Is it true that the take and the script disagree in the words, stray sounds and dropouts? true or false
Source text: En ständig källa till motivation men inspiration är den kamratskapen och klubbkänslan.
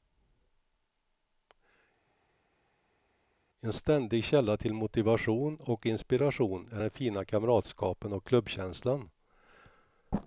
true